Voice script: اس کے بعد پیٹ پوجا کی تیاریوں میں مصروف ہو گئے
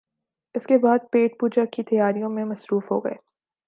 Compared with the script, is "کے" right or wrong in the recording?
right